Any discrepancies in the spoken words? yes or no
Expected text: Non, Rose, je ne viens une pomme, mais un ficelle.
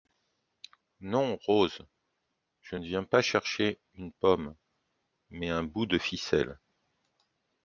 yes